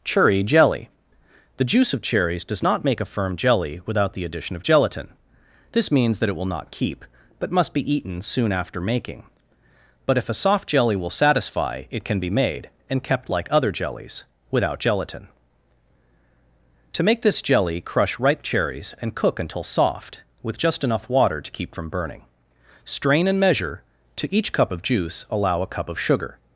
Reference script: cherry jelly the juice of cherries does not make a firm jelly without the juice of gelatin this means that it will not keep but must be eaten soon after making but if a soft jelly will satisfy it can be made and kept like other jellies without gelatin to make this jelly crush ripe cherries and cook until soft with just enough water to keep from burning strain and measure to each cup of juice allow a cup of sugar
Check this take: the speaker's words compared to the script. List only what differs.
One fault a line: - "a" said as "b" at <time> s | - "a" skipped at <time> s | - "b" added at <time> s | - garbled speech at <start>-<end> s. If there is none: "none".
- "juice" said as "addition" at 4.2 s